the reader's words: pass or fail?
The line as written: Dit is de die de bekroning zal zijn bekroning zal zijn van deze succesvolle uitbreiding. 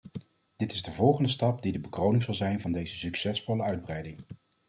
fail